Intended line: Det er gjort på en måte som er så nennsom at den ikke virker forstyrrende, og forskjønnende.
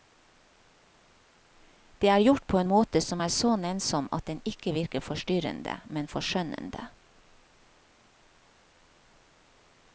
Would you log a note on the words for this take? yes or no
yes